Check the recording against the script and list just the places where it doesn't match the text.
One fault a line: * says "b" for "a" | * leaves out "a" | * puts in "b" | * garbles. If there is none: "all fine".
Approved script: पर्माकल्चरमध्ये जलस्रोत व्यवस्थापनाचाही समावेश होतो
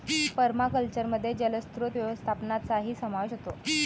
all fine